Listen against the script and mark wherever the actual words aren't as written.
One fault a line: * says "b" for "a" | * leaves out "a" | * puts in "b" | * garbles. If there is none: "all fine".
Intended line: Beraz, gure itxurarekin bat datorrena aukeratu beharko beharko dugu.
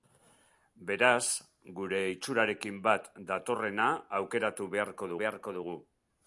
all fine